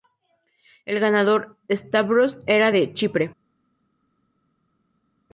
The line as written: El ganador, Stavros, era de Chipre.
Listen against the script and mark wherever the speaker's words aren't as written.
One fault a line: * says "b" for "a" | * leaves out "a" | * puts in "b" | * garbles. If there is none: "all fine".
all fine